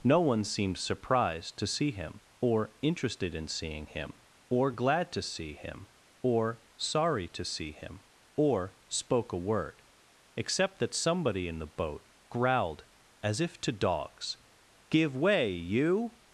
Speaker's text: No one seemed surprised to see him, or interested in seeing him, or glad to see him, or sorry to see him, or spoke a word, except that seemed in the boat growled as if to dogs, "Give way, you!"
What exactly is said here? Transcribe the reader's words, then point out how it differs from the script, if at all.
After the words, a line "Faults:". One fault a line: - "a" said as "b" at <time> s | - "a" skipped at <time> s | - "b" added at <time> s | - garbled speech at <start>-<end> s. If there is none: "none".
No one seemed surprised to see him, or interested in seeing him, or glad to see him, or sorry to see him, or spoke a word, except that somebody in the boat growled as if to dogs, "Give way, you!"
Faults:
- "seemed" said as "somebody" at 10.9 s